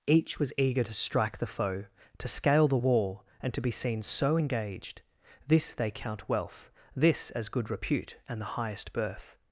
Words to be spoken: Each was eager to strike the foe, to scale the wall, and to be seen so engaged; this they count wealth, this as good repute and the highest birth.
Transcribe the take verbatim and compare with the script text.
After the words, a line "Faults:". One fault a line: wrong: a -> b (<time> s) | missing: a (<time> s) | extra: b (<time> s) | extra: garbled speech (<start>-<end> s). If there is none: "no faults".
Each was eager to strike the foe, to scale the wall, and to be seen so engaged; this they count wealth, this as good repute and the highest birth.
Faults:
no faults